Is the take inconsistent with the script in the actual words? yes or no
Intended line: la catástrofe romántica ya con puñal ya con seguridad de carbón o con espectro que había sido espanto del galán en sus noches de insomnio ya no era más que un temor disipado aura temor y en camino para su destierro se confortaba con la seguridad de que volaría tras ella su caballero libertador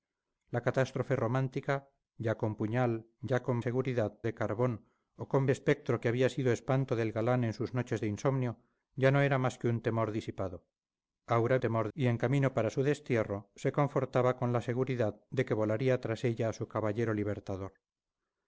no